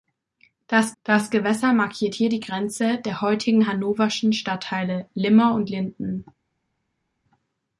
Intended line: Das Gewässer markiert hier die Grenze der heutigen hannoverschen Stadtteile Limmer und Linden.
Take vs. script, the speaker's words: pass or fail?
fail